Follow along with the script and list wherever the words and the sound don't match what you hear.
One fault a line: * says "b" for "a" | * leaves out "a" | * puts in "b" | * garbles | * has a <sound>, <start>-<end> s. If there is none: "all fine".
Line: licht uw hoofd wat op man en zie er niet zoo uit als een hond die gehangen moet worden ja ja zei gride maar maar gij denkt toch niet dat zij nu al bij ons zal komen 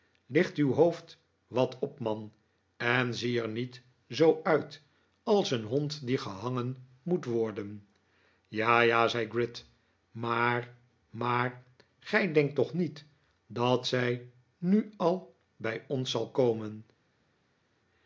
all fine